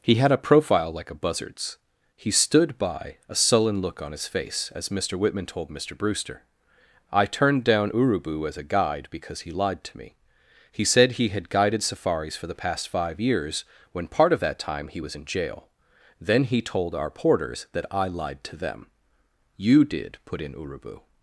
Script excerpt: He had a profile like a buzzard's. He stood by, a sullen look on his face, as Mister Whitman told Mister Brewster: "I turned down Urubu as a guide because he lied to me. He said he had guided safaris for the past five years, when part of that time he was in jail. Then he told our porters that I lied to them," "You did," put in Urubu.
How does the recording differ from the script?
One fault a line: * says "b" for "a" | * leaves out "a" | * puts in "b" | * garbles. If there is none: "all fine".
all fine